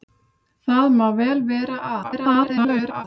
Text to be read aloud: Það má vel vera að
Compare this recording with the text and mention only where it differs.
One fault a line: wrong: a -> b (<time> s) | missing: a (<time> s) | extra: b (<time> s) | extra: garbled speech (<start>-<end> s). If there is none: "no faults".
extra: garbled speech (2.0-3.0 s)